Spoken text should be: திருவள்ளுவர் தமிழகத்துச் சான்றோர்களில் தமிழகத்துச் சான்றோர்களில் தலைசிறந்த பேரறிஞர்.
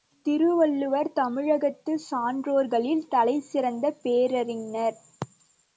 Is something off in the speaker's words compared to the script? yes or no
yes